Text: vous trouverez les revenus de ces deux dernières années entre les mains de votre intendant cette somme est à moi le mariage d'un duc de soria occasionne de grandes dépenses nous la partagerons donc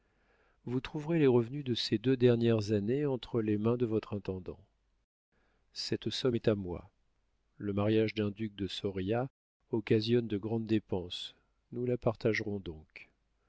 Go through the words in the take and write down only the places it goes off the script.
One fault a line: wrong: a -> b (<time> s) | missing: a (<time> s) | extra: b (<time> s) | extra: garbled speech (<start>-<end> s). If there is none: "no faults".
no faults